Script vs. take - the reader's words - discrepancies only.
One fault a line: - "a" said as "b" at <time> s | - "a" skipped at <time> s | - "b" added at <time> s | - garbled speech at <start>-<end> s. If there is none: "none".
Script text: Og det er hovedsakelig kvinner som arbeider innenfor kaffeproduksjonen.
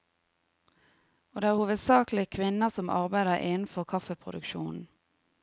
none